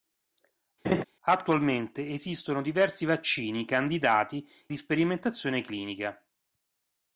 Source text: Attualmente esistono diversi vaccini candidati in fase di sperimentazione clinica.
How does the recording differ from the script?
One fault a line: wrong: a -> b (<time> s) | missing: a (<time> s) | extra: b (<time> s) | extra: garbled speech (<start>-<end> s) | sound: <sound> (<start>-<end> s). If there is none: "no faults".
sound: laugh (0.8-1.0 s)
missing: in fase (4.5 s)